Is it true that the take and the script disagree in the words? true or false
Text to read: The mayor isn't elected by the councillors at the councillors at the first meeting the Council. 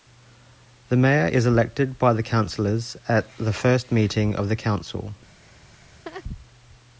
true